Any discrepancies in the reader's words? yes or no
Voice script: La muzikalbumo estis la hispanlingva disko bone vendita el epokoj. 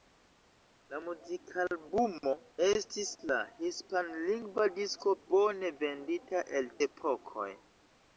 no